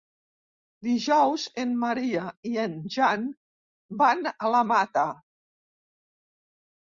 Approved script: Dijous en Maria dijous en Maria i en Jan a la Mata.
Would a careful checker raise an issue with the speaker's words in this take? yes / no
yes